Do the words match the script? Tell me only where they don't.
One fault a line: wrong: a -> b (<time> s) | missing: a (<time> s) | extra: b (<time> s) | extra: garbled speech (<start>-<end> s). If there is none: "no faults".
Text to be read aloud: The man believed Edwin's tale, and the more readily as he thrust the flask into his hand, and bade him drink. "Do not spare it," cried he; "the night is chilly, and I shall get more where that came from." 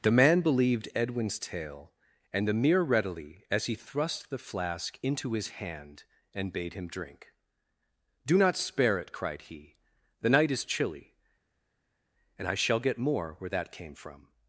wrong: more -> mere (2.5 s)